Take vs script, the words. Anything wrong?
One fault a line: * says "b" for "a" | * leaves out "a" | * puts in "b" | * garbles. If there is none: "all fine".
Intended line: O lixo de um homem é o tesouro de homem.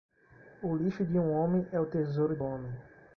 all fine